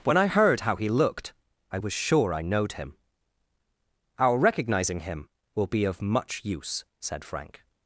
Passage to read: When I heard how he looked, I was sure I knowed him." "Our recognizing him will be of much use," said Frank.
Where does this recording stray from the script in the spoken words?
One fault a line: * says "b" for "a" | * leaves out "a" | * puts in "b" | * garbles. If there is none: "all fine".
all fine